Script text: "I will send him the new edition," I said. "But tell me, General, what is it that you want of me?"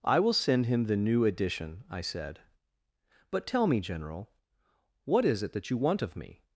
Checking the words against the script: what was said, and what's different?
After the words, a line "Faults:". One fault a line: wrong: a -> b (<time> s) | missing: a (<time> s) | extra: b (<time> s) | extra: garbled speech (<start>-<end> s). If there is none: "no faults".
"I will send him the new edition," I said. "But tell me, General, what is it that you want of me?"
Faults:
no faults